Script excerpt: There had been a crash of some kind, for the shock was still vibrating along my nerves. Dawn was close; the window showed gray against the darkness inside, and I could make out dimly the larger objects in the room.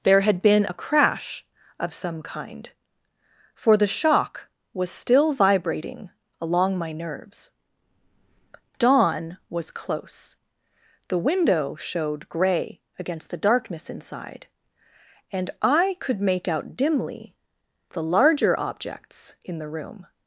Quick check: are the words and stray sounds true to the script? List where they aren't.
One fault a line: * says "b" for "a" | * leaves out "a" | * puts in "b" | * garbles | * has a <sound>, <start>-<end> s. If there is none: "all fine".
all fine